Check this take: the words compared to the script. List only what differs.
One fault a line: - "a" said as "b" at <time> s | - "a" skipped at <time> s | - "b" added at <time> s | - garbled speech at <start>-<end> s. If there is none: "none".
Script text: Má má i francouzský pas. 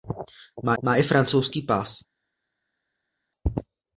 none